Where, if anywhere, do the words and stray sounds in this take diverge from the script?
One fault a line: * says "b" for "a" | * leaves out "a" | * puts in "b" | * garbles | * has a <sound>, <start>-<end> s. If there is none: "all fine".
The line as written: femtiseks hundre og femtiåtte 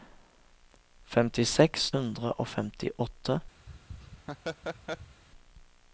* has a laugh, 3.7-5.2 s